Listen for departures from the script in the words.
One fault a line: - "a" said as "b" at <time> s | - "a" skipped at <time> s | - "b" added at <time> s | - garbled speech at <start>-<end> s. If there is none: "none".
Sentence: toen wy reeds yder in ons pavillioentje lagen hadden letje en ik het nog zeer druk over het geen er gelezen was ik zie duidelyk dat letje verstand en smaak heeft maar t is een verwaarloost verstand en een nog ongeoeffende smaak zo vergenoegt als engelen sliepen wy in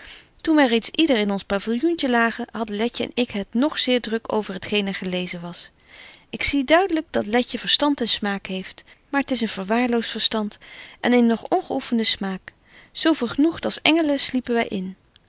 none